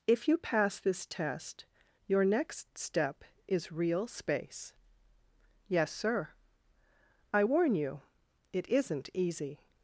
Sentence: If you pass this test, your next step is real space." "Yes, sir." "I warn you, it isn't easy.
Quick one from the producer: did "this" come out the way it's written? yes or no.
yes